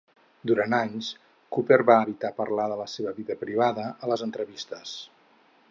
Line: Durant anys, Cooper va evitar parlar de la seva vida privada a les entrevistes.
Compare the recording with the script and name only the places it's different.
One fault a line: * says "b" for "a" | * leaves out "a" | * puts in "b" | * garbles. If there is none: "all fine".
all fine